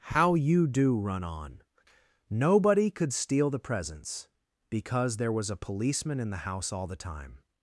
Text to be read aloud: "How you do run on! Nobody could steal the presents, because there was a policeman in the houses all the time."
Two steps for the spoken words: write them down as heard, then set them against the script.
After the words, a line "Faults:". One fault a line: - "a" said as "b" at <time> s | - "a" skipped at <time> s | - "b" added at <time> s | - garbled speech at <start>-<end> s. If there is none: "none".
"How you do run on! Nobody could steal the presents, because there was a policeman in the house all the time."
Faults:
- "houses" said as "house" at 6.5 s